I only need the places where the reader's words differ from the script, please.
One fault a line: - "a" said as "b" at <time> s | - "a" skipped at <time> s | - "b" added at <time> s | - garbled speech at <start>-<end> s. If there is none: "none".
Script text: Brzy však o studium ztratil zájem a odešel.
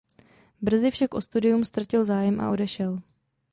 none